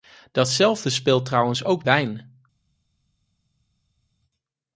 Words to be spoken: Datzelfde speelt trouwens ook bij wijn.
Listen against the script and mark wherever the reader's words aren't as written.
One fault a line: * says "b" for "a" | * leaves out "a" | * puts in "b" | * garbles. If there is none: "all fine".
* leaves out "bij"